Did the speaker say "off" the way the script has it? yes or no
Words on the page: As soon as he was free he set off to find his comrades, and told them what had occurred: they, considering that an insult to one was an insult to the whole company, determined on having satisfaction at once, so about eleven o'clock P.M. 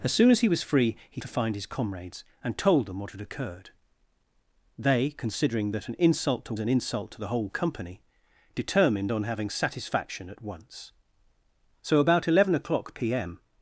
no